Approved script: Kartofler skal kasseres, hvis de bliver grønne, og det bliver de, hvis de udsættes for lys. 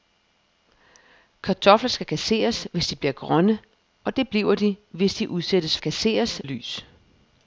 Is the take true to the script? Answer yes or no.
no